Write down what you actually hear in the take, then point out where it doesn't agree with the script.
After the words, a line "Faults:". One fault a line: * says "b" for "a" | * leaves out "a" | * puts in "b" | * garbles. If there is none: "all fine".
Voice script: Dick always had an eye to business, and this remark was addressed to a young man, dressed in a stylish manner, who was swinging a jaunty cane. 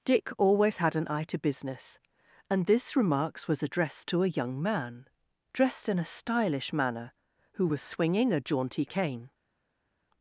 Dick always had an eye to business, and this remarks was addressed to a young man, dressed in a stylish manner, who was swinging a jaunty cane.
Faults:
* says "remarks" for "remark"